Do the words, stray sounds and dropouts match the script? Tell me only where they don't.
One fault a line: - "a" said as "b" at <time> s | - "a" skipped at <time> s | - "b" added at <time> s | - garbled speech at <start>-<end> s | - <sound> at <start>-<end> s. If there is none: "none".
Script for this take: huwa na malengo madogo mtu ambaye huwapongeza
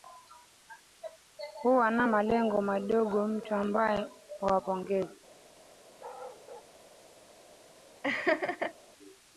- bark at 6.0-6.7 s
- laugh at 8.0-8.7 s